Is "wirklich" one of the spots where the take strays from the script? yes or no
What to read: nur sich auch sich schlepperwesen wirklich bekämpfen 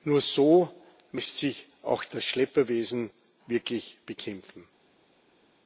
no